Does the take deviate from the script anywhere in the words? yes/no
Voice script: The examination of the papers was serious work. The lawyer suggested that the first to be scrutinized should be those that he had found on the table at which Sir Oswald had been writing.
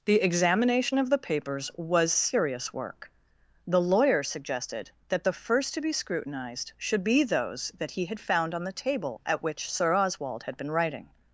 no